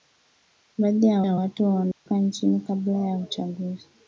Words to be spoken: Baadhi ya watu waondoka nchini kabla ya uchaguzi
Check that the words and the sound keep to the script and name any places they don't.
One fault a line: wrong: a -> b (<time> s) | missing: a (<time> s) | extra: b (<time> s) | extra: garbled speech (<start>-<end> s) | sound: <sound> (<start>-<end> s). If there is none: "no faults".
extra: ya (1.2 s)
sound: dropout (1.9-2.1 s)